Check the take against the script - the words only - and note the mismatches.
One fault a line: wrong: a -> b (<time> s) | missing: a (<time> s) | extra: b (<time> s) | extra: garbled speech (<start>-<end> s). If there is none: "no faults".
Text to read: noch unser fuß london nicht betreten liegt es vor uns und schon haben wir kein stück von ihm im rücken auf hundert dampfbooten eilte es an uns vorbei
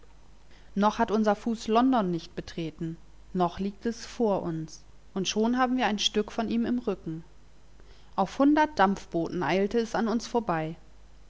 extra: hat (1.0 s)
extra: noch (3.3 s)
wrong: kein -> ein (5.8 s)